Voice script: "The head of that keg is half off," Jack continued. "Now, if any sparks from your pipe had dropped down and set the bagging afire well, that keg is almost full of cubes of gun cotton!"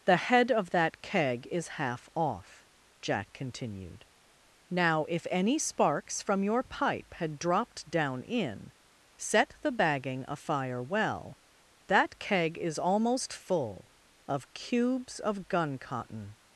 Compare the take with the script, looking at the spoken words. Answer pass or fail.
fail